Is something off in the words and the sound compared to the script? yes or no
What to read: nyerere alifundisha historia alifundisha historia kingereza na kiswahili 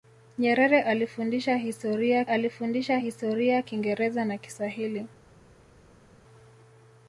no